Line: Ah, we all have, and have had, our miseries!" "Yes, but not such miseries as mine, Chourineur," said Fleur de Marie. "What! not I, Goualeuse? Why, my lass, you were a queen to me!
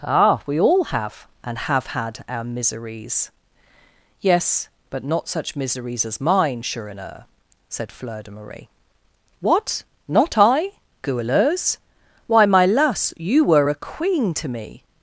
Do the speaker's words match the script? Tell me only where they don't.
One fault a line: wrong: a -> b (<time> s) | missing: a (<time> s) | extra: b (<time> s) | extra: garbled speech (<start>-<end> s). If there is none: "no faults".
no faults